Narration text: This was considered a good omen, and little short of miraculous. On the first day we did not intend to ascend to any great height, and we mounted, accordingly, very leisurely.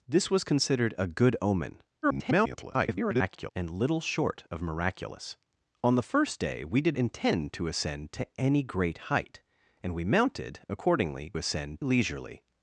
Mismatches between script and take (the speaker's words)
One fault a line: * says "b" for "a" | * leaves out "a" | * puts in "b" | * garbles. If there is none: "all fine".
* garbles
* leaves out "not"
* says "ascend" for "very"